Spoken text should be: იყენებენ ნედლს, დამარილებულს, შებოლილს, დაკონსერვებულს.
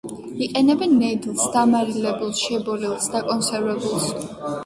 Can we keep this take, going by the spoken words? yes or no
yes